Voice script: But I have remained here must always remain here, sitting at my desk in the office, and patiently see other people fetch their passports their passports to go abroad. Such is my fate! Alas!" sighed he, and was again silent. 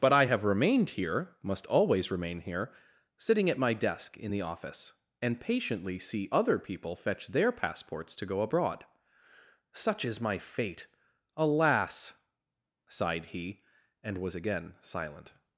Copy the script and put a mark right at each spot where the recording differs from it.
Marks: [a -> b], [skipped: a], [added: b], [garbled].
But I have remained here must always remain here, sitting at my desk in the office, and patiently see other people fetch their passports [skipped: their passports] to go abroad. Such is my fate! Alas!" sighed he, and was again silent.